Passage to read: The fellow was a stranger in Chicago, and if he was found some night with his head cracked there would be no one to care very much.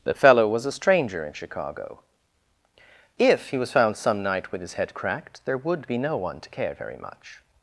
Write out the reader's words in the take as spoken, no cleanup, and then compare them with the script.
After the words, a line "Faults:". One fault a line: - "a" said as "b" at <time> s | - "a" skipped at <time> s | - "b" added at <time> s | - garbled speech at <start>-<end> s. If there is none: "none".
The fellow was a stranger in Chicago, if he was found some night with his head cracked there would be no one to care very much.
Faults:
- "and" skipped at 2.0 s